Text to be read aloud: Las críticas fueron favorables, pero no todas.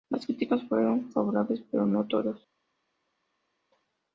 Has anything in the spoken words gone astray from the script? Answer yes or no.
no